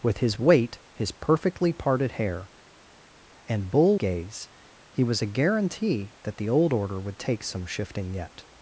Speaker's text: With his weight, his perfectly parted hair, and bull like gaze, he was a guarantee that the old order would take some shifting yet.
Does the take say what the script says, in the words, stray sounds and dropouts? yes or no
no